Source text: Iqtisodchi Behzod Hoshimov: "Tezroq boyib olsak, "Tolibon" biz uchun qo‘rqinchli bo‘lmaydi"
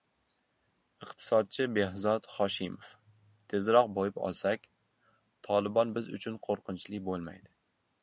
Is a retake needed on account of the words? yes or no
no